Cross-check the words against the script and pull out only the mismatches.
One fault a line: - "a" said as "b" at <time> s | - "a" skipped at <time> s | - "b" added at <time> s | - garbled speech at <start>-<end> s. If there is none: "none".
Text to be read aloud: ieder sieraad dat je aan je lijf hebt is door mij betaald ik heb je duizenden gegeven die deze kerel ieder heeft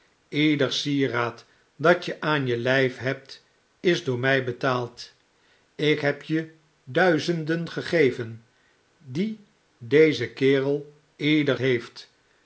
none